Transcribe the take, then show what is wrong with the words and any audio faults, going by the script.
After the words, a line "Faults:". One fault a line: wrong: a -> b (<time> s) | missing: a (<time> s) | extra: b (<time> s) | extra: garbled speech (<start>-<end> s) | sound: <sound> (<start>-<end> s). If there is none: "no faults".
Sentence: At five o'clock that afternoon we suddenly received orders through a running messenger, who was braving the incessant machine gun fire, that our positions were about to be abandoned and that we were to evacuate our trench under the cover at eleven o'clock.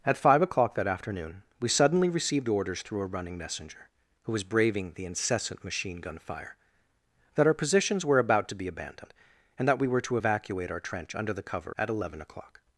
At five o'clock that afternoon we suddenly received orders through a running messenger, who was braving the incessant machine gun fire, that our positions were about to be abandoned and that we were to evacuate our trench under the cover at eleven o'clock.
Faults:
no faults